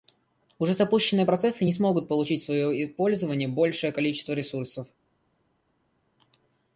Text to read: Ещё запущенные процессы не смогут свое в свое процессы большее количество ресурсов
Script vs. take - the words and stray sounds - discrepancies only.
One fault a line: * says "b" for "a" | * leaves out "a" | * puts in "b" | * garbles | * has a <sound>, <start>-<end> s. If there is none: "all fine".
* says "Уже" for "Ещё"
* says "получить" for "свое"
* says "пользование" for "процессы"